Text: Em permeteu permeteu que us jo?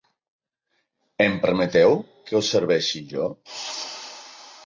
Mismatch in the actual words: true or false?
true